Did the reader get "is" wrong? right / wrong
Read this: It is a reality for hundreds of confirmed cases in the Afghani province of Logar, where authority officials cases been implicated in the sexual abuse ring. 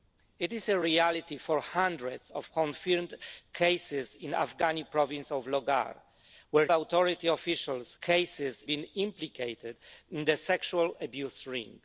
right